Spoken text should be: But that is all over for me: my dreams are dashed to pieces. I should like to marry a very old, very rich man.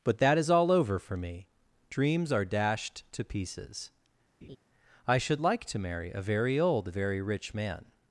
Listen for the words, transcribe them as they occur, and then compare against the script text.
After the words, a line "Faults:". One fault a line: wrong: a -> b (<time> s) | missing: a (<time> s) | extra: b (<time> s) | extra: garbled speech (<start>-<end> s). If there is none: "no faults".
But that is all over for me: dreams are dashed to pieces. I should like to marry a very old, very rich man.
Faults:
missing: my (1.5 s)